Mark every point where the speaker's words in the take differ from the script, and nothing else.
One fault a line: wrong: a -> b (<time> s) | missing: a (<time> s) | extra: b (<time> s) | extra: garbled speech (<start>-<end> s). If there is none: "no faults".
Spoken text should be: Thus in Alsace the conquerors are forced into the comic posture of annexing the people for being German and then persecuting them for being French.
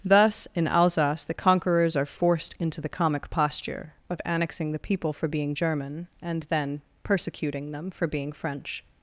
no faults